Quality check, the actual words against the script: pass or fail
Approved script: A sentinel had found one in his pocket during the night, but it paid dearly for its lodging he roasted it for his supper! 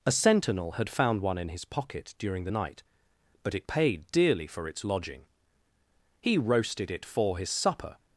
pass